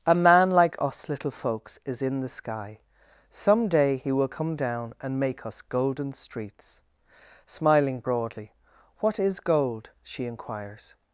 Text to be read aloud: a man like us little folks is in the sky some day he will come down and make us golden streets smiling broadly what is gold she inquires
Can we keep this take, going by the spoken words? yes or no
yes